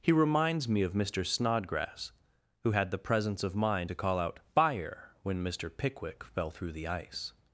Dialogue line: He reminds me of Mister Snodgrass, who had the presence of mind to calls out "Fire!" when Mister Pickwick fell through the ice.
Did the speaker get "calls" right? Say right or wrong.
wrong